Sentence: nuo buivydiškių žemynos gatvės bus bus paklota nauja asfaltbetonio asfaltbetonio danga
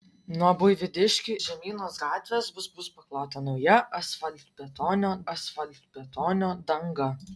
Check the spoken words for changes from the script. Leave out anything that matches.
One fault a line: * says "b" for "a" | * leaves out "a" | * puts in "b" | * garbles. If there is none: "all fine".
all fine